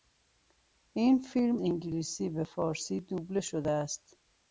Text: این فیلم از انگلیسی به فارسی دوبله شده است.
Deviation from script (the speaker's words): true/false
true